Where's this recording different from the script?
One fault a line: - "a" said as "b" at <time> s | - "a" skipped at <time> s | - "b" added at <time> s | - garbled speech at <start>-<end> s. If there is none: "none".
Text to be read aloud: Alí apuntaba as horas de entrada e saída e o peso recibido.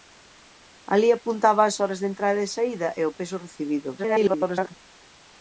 - garbled speech at 4.0-4.7 s